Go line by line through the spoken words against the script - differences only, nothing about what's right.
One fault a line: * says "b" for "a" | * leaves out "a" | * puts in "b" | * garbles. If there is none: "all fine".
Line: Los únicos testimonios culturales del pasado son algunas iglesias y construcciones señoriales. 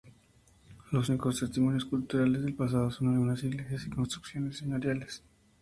all fine